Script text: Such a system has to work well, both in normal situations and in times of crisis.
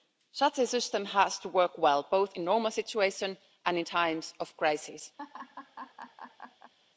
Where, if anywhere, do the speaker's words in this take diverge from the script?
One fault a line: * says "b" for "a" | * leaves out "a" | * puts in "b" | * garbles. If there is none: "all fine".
all fine